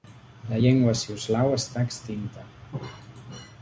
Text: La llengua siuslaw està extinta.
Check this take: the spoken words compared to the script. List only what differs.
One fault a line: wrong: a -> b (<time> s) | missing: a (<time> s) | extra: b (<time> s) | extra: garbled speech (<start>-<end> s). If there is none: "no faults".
no faults